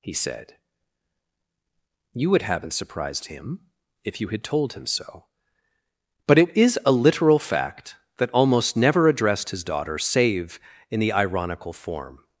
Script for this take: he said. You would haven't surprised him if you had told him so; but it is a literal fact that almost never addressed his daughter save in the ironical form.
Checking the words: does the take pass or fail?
pass